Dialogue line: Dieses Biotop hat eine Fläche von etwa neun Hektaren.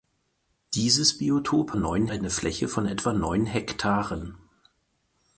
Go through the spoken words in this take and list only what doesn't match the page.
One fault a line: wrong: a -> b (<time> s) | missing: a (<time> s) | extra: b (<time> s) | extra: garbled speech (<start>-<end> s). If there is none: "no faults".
wrong: hat -> neun (1.7 s)